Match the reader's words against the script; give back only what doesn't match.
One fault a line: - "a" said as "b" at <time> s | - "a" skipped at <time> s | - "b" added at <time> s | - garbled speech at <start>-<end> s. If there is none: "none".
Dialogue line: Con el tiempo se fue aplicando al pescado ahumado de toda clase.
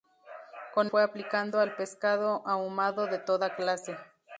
- "el tiempo se" skipped at 0.9 s